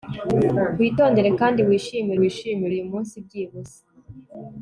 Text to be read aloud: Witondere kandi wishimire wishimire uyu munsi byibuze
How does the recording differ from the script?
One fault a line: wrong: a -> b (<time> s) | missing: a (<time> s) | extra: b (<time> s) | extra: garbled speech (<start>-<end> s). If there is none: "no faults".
no faults